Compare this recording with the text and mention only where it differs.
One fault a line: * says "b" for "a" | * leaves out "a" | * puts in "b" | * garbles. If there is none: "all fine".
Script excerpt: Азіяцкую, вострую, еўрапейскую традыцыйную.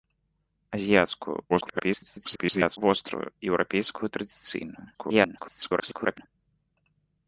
* garbles
* garbles